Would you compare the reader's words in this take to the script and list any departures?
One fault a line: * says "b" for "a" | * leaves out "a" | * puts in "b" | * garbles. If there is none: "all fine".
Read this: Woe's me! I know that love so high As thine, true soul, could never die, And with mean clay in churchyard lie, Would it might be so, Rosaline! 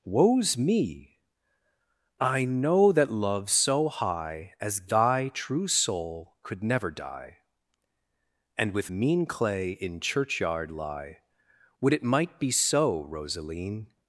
* says "thy" for "thine"